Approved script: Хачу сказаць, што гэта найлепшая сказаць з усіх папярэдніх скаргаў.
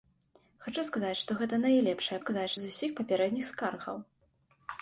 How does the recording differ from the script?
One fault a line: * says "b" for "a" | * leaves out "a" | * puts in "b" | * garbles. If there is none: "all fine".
all fine